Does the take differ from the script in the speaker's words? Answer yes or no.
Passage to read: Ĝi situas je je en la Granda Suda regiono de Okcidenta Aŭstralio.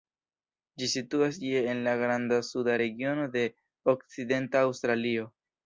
yes